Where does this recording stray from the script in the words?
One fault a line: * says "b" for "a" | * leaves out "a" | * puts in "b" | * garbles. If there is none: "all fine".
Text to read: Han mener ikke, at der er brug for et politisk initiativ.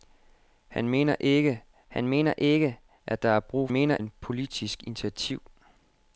* puts in "han mener ikke"
* says "mener" for "for"